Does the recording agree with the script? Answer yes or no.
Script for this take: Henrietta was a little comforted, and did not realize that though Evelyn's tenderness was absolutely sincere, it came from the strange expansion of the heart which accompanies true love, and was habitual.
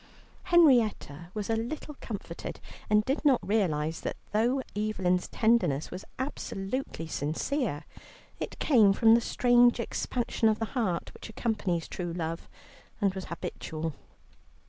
yes